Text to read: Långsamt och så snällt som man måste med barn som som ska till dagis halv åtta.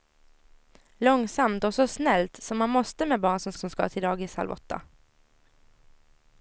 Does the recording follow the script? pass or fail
pass